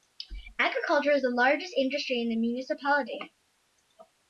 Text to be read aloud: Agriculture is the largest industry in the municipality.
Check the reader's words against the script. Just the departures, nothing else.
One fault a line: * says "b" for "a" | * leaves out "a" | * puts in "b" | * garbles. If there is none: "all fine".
all fine